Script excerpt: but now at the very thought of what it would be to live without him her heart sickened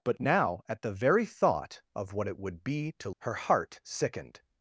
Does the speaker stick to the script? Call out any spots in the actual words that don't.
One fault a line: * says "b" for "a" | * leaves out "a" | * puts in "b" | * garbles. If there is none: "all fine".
* leaves out "live without him"